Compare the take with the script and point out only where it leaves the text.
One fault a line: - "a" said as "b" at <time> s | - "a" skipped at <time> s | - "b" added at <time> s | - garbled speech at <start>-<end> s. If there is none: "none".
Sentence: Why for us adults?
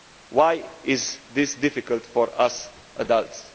- "is this difficult" added at 0.8 s